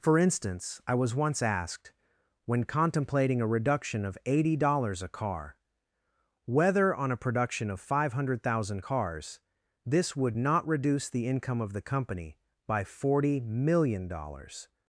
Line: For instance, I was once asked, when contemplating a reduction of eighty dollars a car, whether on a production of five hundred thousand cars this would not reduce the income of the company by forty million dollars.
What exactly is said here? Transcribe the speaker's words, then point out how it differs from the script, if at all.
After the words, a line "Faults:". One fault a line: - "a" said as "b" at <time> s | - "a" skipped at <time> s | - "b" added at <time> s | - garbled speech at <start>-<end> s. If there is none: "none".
For instance, I was once asked, when contemplating a reduction of eighty dollars a car, whether on a production of five hundred thousand cars this would not reduce the income of the company by forty million dollars.
Faults:
none